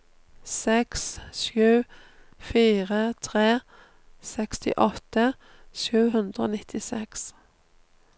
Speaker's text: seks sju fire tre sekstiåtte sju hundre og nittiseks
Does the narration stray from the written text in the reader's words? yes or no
no